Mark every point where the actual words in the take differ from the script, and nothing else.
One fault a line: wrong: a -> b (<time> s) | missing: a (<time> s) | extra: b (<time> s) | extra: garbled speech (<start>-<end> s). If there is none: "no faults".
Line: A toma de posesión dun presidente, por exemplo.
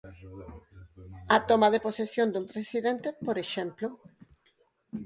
no faults